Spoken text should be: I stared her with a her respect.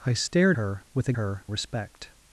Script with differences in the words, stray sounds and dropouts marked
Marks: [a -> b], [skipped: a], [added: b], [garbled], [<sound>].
I stared her with a her respect.